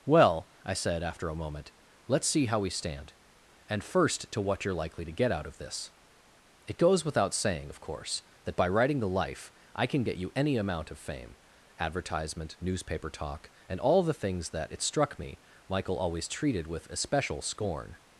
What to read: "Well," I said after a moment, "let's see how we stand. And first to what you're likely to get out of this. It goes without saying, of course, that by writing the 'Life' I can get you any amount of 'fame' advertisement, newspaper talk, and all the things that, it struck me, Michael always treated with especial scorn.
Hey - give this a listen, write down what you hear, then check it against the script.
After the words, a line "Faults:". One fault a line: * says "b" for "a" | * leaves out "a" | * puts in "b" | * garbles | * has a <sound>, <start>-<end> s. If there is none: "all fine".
"Well," I said after a moment, "let's see how we stand. And first to what you're likely to get out of this. It goes without saying, of course, that by writing the 'Life' I can get you any amount of 'fame' advertisement, newspaper talk, and all the things that, it struck me, Michael always treated with especial scorn.
Faults:
all fine